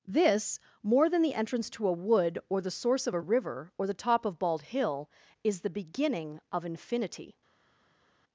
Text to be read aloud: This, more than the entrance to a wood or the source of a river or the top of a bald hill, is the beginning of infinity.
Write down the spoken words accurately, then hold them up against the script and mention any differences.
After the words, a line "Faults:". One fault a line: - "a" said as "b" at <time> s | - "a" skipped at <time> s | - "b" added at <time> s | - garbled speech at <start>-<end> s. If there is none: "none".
This, more than the entrance to a wood or the source of a river or the top of bald hill, is the beginning of infinity.
Faults:
- "a" skipped at 4.4 s